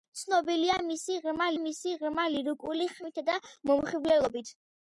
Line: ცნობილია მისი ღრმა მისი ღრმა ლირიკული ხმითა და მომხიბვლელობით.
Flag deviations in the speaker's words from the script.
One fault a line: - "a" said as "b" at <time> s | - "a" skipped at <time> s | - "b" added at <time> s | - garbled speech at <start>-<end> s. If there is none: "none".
none